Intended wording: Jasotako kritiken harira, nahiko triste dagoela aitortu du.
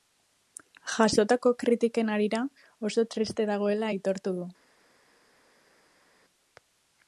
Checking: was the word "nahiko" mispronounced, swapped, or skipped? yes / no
yes